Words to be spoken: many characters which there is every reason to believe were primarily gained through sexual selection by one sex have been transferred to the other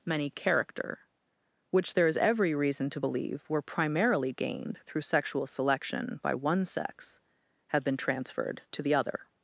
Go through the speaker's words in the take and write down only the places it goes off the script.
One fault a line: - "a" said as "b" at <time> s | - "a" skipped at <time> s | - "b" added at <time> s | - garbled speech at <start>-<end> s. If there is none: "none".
- "characters" said as "character" at 0.3 s